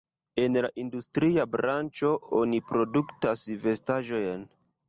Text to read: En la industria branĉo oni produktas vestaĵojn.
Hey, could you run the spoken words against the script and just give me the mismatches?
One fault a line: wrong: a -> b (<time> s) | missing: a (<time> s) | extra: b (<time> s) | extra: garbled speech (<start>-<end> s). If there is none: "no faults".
no faults